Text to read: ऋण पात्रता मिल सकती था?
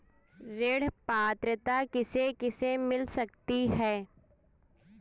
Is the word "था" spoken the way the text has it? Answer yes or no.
no